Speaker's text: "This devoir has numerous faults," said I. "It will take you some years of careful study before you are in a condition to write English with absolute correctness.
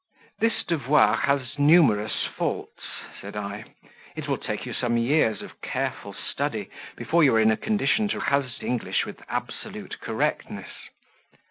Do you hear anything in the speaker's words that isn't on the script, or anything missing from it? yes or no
yes